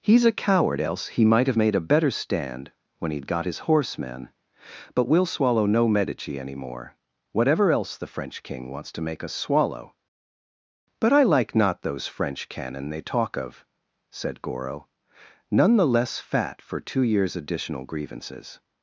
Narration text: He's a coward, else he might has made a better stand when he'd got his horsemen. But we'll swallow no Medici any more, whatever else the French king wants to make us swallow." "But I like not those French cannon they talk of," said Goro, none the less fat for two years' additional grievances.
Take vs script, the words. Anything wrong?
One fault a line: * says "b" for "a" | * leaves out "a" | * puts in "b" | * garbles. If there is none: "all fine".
* says "have" for "has"